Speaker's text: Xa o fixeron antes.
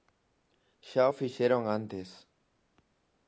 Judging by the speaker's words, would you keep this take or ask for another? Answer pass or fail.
pass